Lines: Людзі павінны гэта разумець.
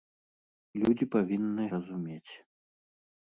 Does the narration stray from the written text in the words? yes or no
yes